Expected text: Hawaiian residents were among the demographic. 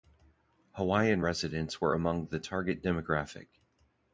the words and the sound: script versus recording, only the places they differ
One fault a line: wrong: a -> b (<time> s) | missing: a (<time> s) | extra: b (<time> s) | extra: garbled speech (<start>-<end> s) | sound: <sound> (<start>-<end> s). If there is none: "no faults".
extra: target (2.4 s)